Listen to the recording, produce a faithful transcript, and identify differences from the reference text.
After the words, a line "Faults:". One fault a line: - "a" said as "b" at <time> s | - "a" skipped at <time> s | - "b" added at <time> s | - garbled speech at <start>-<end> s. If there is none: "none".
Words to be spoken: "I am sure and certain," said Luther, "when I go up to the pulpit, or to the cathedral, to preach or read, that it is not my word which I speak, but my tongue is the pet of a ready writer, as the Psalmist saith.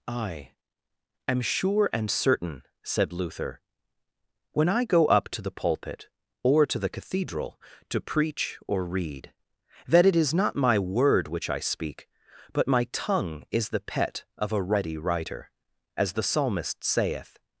"I am sure and certain," said Luther, "when I go up to the pulpit, or to the cathedral, to preach or read, that it is not my word which I speak, but my tongue is the pet of a ready writer, as the Psalmist saith.
Faults:
none